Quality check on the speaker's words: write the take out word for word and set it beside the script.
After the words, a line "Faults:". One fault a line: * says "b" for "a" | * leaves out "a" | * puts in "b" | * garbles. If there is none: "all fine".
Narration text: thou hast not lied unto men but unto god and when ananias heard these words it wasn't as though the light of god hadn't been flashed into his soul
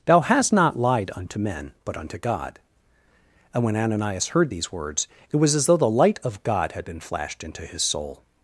thou hast not lied unto men but unto god and when ananias heard these words it was as though the light of god had been flashed into his soul
Faults:
* says "was" for "wasn't"
* says "had" for "hadn't"